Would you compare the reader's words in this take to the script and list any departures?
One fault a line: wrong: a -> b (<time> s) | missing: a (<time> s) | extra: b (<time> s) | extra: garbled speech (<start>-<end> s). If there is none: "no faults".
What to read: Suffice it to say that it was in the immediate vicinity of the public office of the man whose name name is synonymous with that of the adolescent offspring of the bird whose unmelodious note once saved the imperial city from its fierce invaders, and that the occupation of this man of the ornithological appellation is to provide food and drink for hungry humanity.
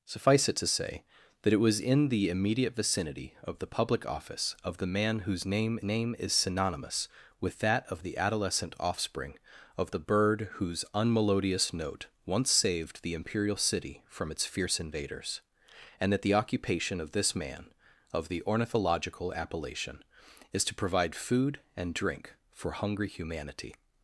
no faults